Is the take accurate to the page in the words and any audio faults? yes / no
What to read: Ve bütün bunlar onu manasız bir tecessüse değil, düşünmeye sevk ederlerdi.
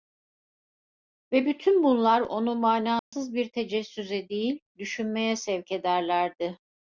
no